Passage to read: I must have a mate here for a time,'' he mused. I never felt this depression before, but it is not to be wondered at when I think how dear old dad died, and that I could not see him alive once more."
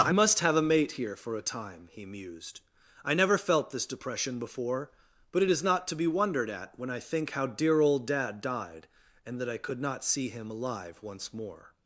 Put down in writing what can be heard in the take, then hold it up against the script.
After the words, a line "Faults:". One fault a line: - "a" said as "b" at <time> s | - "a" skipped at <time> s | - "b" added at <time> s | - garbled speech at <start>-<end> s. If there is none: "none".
I must have a mate here for a time,'' he mused. I never felt this depression before, but it is not to be wondered at when I think how dear old dad died, and that I could not see him alive once more."
Faults:
none